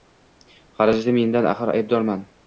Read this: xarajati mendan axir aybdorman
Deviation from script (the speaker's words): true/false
false